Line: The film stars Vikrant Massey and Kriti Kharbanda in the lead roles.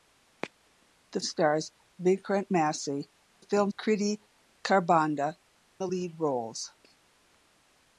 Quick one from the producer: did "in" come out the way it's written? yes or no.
no